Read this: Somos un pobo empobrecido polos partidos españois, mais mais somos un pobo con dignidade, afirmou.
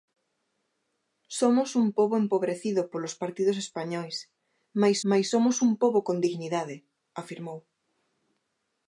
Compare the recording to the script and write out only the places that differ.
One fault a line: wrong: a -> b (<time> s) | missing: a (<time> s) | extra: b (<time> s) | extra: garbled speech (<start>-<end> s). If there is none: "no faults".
no faults